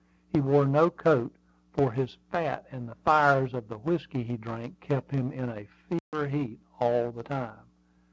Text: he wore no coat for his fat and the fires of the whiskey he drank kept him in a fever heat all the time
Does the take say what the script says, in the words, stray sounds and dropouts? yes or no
no